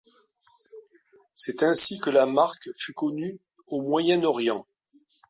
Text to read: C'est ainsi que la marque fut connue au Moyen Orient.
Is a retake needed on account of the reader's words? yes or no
no